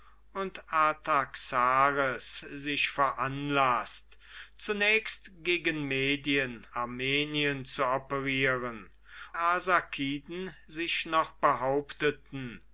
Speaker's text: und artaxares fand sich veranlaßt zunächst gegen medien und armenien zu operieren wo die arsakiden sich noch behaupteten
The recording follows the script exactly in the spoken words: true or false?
false